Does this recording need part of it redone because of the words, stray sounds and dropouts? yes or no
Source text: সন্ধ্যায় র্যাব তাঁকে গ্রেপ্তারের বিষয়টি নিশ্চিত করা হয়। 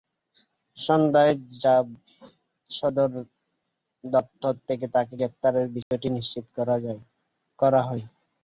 yes